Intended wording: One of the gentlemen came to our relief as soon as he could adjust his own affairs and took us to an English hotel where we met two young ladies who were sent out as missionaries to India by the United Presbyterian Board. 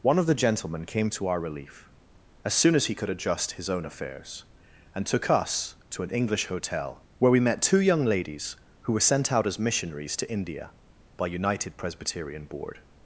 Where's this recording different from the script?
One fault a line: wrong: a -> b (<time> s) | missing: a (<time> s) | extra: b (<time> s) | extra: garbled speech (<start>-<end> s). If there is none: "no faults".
missing: the (11.3 s)